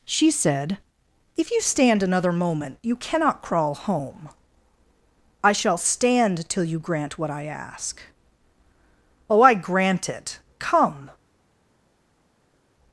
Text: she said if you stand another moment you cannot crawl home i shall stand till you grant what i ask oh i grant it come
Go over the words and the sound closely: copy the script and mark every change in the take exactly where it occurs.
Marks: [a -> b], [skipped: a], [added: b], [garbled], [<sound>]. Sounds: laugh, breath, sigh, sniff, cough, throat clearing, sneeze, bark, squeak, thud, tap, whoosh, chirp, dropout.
she said if you stand another moment you cannot crawl home i shall stand till you grant what i ask oh i grant it come